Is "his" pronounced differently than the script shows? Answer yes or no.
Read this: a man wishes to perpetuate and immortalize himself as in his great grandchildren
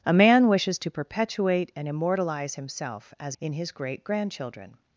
no